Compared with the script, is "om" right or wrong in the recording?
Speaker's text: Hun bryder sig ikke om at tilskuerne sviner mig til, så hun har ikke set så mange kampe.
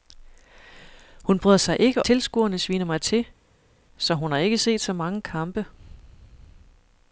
wrong